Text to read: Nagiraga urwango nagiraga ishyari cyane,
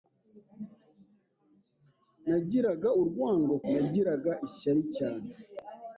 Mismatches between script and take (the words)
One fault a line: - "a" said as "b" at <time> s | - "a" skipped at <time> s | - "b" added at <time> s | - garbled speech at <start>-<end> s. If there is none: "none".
none